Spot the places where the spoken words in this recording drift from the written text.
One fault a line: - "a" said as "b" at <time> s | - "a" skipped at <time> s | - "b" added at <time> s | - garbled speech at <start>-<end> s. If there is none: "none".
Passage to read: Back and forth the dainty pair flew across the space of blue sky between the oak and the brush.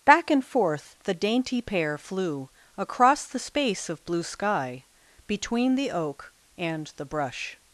none